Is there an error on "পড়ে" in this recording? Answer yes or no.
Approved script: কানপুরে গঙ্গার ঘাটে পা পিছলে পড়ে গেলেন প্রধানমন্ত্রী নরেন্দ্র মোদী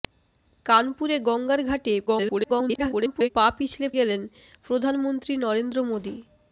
yes